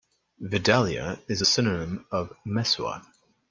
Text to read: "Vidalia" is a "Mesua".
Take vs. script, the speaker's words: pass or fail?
fail